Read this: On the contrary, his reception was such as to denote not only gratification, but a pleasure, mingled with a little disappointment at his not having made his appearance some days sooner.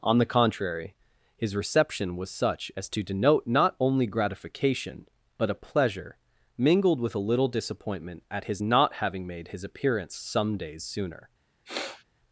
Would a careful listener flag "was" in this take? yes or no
no